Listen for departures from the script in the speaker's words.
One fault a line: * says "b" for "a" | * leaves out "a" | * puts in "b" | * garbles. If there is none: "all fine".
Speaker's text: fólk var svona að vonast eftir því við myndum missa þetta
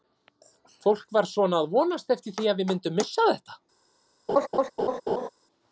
* puts in "að"